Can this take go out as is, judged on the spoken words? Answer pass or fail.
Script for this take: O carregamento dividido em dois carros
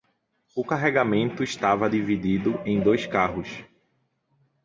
fail